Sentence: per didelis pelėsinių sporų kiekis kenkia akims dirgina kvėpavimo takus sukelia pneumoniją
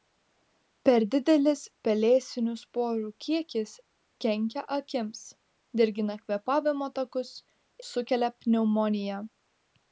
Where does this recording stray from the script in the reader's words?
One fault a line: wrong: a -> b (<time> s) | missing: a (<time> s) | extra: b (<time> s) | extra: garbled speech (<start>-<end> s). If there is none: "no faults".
no faults